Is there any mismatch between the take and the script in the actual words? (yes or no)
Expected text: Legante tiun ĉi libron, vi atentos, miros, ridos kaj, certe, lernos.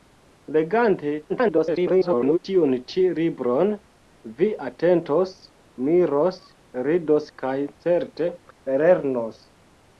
yes